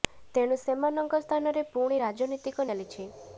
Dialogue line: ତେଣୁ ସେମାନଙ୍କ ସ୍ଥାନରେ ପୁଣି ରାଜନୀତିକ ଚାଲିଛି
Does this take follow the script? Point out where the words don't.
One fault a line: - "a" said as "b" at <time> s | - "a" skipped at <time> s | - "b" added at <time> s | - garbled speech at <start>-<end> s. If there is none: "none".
none